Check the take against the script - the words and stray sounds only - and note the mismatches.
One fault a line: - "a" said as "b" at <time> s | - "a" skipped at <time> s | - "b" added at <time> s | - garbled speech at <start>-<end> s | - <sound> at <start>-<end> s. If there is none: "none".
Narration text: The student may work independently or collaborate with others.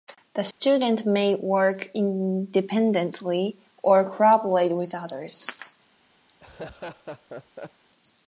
- dropout at 0.5-0.6 s
- laugh at 6.3-7.8 s